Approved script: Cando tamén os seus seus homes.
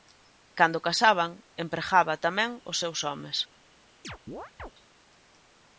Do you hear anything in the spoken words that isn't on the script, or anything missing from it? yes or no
yes